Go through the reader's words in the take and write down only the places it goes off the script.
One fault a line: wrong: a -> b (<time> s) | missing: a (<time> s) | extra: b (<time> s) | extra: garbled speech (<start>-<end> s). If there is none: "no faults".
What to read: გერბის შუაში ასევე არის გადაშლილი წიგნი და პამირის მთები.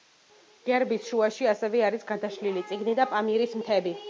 no faults